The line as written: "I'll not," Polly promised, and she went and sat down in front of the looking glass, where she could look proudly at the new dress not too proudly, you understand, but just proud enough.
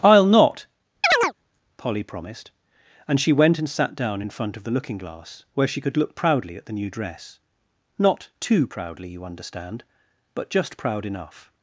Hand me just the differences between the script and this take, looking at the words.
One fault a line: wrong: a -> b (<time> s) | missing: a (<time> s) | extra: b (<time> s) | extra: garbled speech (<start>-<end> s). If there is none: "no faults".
no faults